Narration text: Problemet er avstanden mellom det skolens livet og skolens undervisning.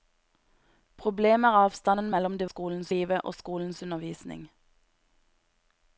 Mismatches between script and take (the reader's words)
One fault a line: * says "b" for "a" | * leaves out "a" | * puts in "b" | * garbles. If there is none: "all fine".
all fine